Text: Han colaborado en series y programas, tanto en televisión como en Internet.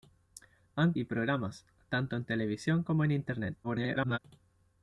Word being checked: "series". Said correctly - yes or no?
no